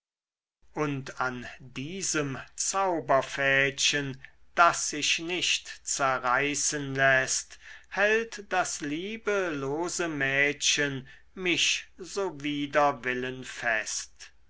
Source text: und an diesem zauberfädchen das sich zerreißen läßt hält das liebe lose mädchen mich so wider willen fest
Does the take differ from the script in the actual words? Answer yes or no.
yes